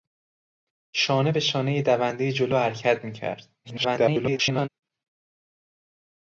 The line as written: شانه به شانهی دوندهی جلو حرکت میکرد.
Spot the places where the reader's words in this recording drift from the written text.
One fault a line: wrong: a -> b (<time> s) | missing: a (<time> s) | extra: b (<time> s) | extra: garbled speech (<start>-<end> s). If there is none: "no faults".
extra: garbled speech (3.6-4.7 s)